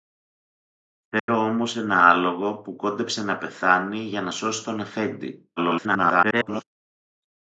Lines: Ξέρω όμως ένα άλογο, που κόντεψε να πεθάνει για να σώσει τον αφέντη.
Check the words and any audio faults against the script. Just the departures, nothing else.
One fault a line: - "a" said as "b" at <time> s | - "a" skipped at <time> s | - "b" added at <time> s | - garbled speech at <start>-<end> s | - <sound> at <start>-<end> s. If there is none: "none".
- dropout at 1.2-1.3 s
- garbled speech at 5.6-6.6 s